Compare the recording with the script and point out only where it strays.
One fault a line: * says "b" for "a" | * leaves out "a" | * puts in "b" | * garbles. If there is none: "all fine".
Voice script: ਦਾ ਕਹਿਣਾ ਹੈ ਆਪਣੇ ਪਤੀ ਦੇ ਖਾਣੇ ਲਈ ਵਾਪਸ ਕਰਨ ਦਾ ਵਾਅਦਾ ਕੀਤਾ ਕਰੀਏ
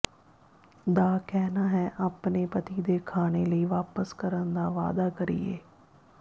* leaves out "ਕੀਤਾ"